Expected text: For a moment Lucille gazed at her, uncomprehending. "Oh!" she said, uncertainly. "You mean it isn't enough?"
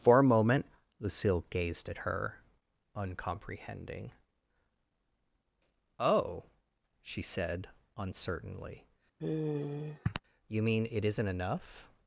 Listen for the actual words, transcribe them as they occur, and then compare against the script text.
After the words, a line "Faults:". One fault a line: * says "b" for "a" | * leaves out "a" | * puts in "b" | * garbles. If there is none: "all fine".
For a moment Lucille gazed at her, uncomprehending. "Oh!" she said, uncertainly. "You mean it isn't enough?"
Faults:
all fine